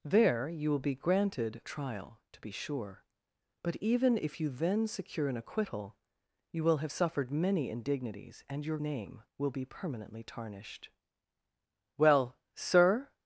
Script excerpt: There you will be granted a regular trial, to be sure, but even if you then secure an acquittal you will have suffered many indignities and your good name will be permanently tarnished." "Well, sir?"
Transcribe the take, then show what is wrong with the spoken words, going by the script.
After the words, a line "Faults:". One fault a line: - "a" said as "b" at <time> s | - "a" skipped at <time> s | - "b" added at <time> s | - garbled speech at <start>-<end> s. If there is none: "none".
There you will be granted trial, to be sure, but even if you then secure an acquittal you will have suffered many indignities and your name will be permanently tarnished." "Well, sir?"
Faults:
- "a regular" skipped at 1.6 s
- "good" skipped at 8.8 s